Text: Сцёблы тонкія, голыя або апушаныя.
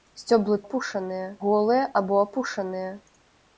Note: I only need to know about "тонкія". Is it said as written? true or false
false